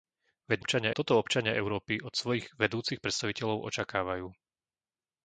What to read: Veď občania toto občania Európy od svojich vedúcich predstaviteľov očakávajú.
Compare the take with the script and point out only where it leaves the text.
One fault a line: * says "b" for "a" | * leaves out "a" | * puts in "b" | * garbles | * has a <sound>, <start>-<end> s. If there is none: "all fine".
all fine